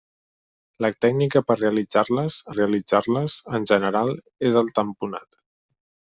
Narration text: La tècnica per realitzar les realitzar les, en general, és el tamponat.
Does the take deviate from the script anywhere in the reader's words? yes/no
no